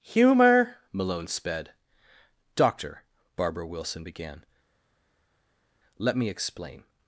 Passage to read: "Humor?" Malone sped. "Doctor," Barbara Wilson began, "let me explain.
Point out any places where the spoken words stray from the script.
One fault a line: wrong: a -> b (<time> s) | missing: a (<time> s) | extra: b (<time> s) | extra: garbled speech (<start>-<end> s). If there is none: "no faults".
no faults